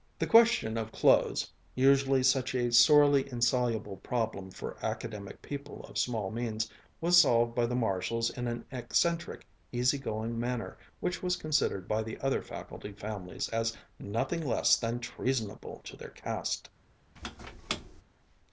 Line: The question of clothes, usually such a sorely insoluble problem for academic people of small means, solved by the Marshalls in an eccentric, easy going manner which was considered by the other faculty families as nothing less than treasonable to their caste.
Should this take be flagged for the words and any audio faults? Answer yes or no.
yes